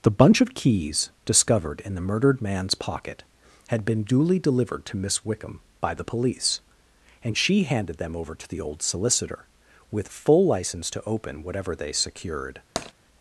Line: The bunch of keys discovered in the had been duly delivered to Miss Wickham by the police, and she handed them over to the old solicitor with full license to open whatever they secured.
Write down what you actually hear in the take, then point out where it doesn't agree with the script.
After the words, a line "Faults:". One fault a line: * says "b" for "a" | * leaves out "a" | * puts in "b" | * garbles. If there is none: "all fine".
The bunch of keys discovered in the murdered man's pocket had been duly delivered to Miss Wickham by the police, and she handed them over to the old solicitor with full license to open whatever they secured.
Faults:
* puts in "murdered man's pocket"